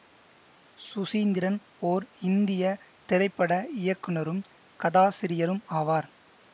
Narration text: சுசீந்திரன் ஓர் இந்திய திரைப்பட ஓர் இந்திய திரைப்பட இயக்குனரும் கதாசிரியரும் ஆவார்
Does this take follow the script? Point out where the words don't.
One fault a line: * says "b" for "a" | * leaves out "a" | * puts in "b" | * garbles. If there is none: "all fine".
* leaves out "ஓர் இந்திய திரைப்பட"